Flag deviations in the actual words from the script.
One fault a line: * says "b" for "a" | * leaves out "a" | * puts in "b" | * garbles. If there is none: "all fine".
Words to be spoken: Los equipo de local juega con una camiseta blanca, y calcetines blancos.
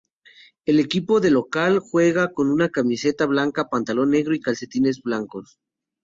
* says "El" for "Los"
* puts in "pantalón negro"